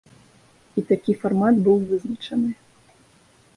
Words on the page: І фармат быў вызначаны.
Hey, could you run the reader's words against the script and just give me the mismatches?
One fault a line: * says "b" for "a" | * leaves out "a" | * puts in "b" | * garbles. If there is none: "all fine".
* puts in "такі"